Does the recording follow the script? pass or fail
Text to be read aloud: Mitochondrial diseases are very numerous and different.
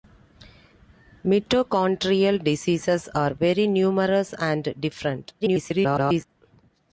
fail